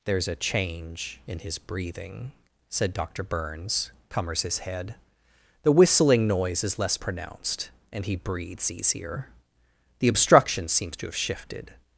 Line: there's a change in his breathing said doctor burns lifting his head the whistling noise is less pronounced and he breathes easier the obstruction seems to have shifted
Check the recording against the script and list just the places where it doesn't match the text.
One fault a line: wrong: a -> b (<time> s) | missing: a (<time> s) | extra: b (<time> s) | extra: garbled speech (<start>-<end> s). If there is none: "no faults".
wrong: lifting -> cummers (4.1 s)